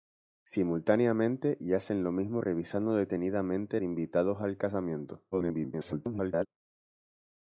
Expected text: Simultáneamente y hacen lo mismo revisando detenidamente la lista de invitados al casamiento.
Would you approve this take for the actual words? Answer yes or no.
no